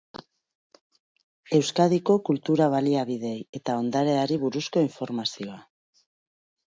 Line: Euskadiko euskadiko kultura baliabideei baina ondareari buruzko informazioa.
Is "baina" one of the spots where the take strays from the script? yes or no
yes